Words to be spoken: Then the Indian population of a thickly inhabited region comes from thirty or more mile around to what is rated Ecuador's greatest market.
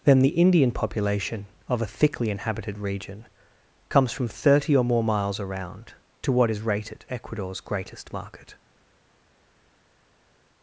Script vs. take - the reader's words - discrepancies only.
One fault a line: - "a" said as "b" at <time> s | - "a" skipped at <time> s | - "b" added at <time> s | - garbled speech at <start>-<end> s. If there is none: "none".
- "mile" said as "miles" at 5.0 s